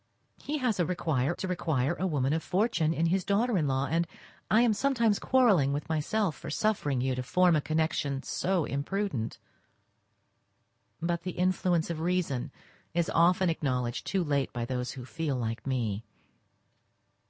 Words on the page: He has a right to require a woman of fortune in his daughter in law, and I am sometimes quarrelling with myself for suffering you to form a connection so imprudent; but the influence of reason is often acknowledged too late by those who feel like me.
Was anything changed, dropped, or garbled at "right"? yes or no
yes